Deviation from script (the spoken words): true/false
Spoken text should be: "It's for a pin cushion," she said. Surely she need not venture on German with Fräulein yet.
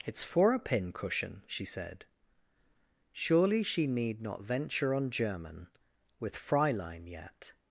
false